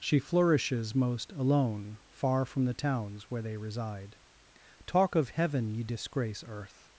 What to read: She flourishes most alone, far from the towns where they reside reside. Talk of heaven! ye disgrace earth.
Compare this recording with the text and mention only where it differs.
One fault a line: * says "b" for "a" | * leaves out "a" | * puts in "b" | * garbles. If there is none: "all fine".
* leaves out "reside"